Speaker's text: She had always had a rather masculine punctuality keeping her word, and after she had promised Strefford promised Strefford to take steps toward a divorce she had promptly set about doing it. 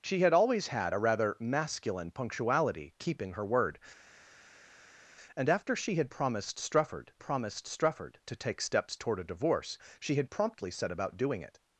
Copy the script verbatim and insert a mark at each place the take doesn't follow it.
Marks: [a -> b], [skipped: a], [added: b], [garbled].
She had always had a rather masculine punctuality keeping her word, and after she had promised Strefford promised Strefford to take steps toward a divorce she had promptly set about doing it.